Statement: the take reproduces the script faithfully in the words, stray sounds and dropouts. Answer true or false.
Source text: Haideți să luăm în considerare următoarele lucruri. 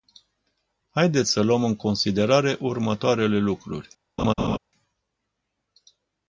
false